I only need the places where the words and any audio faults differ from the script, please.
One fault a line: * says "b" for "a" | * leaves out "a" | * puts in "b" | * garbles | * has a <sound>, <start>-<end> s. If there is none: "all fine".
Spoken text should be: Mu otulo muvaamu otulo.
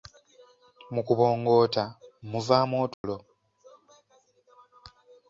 * says "kubongoota" for "otulo"
* has a dropout, 2.9-3.0 s